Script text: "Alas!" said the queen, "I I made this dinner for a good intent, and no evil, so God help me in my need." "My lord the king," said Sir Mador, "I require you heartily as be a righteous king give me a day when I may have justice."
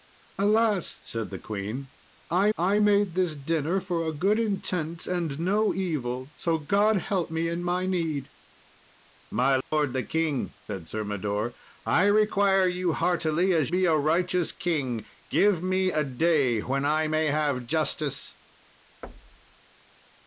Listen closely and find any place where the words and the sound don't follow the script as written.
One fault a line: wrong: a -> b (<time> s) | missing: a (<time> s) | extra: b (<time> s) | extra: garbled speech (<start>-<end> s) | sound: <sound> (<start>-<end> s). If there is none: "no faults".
sound: dropout (9.6-9.7 s)
sound: thud (19.0-19.6 s)